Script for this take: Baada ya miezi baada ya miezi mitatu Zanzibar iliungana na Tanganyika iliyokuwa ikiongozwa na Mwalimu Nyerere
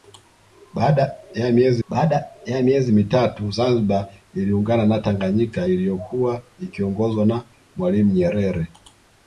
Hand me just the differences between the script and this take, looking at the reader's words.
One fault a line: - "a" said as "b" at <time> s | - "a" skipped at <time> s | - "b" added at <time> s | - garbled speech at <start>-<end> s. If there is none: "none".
none